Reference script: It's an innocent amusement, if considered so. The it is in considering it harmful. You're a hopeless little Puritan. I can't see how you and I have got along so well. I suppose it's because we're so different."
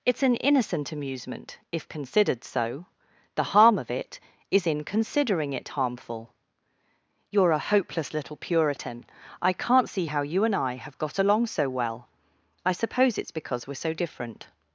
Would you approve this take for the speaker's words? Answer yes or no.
no